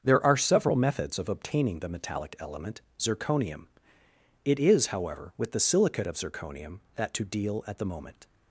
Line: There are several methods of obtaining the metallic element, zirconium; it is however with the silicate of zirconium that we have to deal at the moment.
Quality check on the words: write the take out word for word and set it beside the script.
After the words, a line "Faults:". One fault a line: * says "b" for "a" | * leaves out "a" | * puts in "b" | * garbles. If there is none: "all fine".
There are several methods of obtaining the metallic element, zirconium; it is however with the silicate of zirconium that to deal at the moment.
Faults:
* leaves out "we have"